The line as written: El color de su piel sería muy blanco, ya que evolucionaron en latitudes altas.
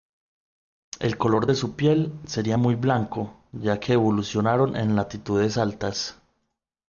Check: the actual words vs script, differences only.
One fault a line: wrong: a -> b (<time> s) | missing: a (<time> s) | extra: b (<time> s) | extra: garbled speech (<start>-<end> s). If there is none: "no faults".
no faults